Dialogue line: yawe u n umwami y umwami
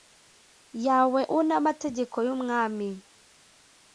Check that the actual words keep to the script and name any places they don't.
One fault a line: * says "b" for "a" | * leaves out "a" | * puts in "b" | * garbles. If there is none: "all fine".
* says "amategeko" for "umwami"